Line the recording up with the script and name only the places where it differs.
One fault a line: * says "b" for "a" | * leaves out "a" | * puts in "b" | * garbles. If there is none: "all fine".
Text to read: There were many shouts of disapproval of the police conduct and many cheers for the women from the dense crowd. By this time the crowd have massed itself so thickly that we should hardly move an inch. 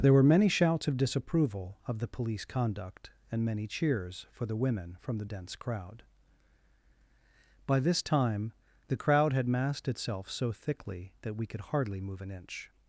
* says "had" for "have"
* says "could" for "should"